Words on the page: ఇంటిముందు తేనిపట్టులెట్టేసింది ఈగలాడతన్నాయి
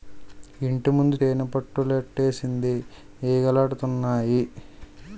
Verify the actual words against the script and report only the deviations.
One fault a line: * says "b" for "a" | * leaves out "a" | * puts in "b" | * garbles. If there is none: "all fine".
all fine